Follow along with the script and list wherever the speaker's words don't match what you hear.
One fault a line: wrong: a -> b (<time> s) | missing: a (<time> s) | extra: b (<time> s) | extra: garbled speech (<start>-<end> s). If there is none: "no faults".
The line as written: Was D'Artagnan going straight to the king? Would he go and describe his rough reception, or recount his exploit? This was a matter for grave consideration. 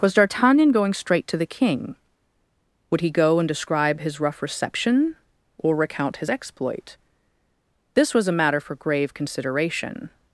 no faults